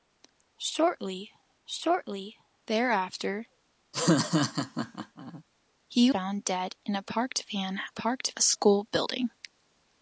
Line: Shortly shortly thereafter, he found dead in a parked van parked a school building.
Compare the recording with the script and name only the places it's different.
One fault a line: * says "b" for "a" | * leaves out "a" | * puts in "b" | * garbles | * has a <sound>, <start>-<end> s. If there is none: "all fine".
* has a laugh, 3.9-5.4 s